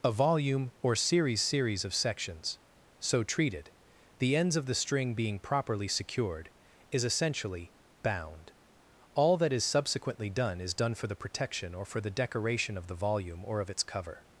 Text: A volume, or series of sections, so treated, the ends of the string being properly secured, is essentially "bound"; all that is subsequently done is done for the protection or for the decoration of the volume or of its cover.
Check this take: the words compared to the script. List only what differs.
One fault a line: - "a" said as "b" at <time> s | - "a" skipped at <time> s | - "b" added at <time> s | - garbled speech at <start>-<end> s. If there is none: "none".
- "series" added at 1.4 s